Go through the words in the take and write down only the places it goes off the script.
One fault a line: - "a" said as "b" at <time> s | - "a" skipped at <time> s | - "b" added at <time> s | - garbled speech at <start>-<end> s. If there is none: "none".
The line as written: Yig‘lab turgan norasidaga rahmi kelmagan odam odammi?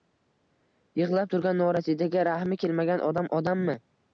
none